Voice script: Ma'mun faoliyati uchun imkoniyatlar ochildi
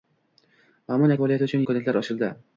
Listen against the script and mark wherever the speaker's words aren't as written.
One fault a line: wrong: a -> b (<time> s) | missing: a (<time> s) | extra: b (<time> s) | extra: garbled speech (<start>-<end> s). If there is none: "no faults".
no faults